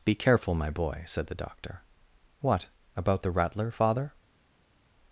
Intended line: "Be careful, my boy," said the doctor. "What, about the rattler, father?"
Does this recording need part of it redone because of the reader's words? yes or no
no